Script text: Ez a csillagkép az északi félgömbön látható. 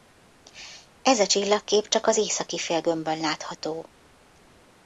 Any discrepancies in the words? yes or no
yes